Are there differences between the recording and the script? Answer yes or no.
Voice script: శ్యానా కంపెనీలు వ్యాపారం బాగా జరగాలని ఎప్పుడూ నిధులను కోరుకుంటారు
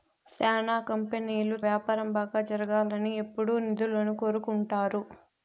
no